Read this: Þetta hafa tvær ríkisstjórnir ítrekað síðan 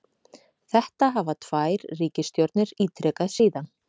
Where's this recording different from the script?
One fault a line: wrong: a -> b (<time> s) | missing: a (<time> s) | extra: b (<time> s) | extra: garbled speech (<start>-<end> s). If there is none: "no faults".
no faults